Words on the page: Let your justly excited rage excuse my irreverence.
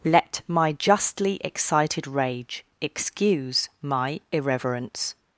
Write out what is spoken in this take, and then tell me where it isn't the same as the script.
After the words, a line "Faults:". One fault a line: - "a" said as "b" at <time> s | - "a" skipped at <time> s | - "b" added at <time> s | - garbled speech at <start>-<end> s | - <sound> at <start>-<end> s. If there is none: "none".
Let my justly excited rage excuse my irreverence.
Faults:
- "your" said as "my" at 0.5 s